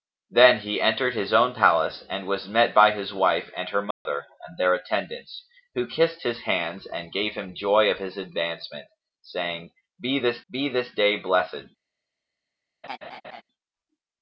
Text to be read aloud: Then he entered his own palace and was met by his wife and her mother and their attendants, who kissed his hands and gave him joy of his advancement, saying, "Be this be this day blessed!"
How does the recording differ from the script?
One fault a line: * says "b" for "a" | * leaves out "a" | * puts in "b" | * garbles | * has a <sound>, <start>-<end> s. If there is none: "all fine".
* has a dropout, 3.9-4.1 s
* has a laugh, 12.8-13.4 s